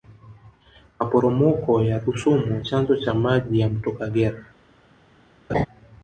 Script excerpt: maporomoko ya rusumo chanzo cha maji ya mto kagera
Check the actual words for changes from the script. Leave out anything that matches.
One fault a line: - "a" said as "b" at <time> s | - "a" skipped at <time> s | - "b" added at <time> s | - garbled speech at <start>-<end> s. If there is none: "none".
none